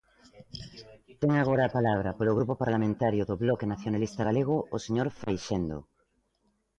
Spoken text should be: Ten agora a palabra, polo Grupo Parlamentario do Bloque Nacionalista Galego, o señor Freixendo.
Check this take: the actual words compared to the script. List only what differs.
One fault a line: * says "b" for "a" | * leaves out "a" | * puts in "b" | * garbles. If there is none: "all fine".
all fine